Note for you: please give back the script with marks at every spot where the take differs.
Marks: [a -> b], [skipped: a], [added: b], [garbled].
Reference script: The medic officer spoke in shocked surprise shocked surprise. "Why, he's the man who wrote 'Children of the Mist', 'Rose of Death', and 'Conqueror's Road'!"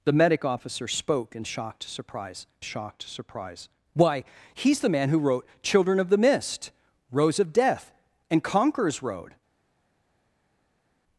The medic officer spoke in shocked surprise shocked surprise. "Why, he's the man who wrote 'Children of the Mist', 'Rose of Death', and 'Conqueror's Road'!"